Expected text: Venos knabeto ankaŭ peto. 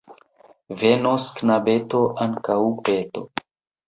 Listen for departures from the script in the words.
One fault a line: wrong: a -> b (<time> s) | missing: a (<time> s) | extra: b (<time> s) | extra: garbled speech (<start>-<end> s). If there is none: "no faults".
no faults